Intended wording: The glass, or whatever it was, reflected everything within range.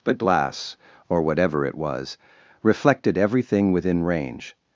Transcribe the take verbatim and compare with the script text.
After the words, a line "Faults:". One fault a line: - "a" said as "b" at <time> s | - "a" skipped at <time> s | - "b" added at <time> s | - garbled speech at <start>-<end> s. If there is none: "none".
But glass, or whatever it was, reflected everything within range.
Faults:
- "The" said as "But" at 0.0 s